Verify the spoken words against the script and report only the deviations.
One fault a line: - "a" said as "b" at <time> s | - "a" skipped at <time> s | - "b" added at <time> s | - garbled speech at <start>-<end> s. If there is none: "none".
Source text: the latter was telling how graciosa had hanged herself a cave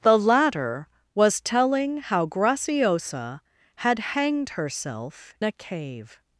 none